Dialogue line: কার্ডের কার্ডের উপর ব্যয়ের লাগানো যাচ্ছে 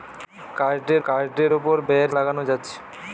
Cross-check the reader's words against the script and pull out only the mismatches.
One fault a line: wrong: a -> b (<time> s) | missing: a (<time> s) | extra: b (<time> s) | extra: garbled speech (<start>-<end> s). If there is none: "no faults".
no faults